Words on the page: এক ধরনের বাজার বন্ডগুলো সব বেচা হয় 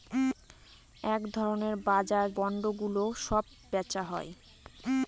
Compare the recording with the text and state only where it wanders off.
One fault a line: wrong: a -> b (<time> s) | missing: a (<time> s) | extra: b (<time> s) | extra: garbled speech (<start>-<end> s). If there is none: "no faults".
no faults